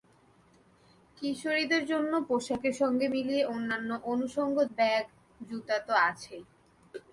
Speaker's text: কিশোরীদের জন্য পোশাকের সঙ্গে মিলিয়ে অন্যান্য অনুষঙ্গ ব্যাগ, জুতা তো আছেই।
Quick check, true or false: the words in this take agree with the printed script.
true